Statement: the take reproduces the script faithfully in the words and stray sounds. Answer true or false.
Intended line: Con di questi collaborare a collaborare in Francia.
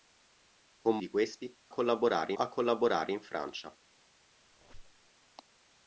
false